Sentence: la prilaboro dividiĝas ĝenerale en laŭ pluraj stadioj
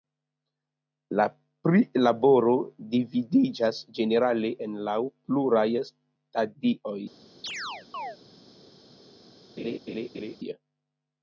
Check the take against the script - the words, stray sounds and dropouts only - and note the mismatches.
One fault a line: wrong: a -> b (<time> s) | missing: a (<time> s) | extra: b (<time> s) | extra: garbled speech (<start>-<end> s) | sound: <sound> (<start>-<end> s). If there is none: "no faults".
sound: chirp (7.4-8.2 s)
sound: laugh (9.6-10.4 s)